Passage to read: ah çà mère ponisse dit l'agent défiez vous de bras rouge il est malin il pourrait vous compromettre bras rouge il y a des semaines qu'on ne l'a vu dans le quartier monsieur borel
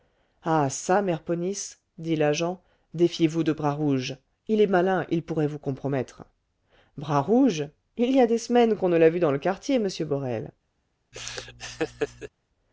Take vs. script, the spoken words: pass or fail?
pass